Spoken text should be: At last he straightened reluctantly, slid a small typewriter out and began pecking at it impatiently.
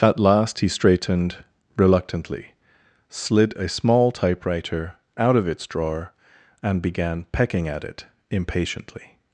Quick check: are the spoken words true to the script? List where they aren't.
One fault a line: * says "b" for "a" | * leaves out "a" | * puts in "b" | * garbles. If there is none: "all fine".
* puts in "of its drawer"